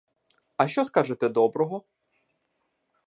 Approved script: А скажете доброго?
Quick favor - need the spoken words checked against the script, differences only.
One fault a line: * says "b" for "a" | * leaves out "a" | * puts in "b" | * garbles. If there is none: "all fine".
* puts in "що"